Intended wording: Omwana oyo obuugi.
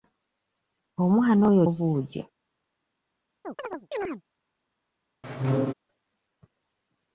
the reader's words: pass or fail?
pass